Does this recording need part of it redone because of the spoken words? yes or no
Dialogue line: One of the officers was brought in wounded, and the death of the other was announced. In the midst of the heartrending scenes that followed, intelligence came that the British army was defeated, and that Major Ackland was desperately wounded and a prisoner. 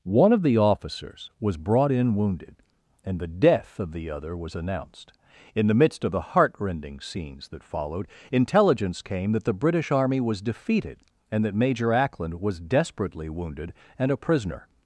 no